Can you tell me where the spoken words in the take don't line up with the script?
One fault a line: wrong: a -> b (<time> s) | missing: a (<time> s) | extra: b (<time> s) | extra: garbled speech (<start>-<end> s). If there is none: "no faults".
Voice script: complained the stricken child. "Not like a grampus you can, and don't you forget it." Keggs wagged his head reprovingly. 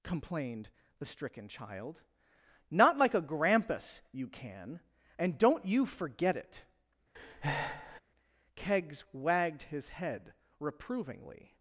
no faults